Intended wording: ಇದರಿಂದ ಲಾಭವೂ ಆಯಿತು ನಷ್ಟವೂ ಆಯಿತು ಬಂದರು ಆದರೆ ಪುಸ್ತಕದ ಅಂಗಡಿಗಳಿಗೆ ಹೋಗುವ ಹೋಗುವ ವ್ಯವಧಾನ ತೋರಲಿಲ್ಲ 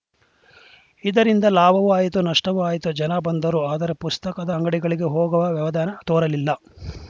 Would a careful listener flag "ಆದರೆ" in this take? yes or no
no